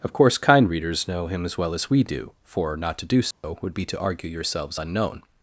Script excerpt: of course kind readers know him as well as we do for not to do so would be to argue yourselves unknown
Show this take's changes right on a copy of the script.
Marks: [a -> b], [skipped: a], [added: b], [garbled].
of course kind readers know him as well as we do for not to do so would be to argue yourselves unknown